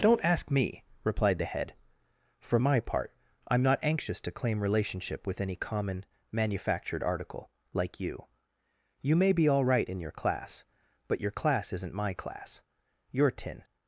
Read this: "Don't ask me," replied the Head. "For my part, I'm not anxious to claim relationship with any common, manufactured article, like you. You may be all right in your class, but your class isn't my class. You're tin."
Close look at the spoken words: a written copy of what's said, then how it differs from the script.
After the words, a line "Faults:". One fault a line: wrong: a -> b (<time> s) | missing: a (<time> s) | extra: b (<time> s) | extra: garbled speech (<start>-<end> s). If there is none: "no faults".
"Don't ask me," replied the Head. "For my part, I'm not anxious to claim relationship with any common, manufactured article, like you. You may be all right in your class, but your class isn't my class. You're tin."
Faults:
no faults